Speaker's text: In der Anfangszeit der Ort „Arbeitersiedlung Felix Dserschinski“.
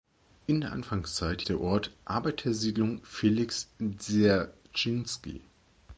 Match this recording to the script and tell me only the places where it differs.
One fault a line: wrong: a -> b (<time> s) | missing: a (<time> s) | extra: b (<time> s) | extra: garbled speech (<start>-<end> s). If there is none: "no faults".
no faults